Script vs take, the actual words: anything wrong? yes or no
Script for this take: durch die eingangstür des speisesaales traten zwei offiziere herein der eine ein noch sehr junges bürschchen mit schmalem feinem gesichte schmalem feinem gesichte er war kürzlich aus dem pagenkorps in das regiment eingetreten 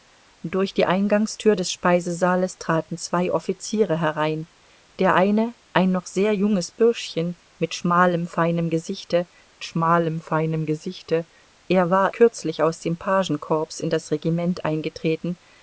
no